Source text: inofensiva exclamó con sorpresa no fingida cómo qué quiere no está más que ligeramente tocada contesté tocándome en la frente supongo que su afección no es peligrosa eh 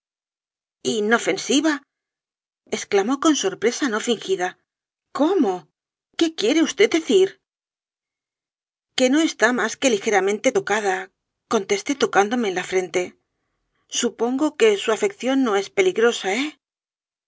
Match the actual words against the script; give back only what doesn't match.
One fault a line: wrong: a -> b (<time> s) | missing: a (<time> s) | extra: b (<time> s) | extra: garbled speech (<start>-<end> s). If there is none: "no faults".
extra: vd decir que (6.7 s)